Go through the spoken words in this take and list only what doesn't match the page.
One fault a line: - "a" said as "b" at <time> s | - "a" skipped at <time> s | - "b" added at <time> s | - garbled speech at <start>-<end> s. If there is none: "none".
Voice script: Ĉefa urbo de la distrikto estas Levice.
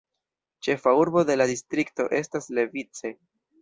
none